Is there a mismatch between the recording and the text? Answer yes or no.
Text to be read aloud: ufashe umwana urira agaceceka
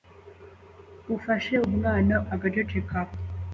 yes